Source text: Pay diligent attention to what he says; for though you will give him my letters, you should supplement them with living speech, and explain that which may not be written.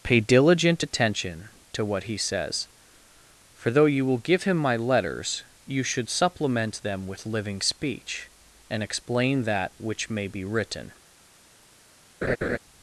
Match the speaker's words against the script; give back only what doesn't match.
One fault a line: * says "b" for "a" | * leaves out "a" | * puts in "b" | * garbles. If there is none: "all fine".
* leaves out "not"